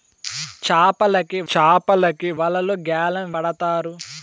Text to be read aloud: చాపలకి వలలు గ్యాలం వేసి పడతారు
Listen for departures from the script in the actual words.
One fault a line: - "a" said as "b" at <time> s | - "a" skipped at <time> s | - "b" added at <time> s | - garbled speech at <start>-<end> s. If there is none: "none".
- "చాపలకి" added at 1.5 s
- "వేసి" skipped at 3.3 s